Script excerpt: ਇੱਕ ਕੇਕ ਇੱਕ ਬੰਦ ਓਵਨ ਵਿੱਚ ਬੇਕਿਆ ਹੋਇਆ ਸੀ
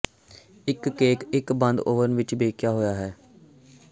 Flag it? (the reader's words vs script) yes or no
yes